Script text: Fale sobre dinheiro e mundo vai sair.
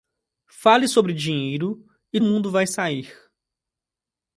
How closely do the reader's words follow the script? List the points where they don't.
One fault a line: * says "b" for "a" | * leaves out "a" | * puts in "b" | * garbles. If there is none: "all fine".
all fine